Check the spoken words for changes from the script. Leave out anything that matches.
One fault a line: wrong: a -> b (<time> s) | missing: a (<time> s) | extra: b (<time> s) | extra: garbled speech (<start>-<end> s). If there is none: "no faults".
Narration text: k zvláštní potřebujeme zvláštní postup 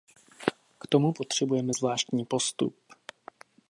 wrong: zvláštní -> tomu (0.9 s)